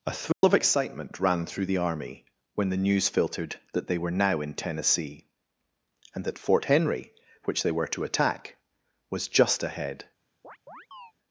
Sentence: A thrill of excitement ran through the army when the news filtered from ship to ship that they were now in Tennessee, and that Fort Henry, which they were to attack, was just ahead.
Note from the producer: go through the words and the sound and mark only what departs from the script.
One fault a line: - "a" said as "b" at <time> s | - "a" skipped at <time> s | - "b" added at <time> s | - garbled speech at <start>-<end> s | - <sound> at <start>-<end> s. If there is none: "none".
- dropout at 0.3-0.4 s
- "from ship to ship" skipped at 3.6 s
- chirp at 10.4-11.1 s